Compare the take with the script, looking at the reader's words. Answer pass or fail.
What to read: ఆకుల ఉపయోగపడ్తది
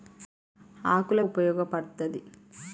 pass